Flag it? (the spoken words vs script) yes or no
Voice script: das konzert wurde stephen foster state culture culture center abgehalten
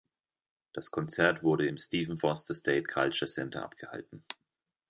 yes